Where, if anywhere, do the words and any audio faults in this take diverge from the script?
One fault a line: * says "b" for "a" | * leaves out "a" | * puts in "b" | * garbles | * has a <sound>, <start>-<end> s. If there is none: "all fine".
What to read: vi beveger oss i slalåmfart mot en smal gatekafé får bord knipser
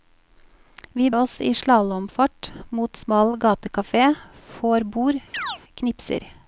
* leaves out "beveger"
* leaves out "en"
* has a chirp, 5.3-5.6 s